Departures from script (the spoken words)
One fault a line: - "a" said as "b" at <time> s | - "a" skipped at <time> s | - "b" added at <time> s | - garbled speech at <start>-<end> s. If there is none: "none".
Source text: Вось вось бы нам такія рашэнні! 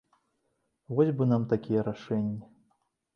- "вось" skipped at 1.1 s